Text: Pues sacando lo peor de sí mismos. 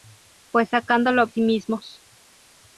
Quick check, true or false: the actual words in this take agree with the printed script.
false